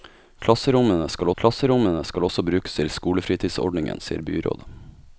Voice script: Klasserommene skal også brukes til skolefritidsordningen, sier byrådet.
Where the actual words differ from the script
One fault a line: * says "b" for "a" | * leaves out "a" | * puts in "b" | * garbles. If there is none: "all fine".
* puts in "klasserommene skal"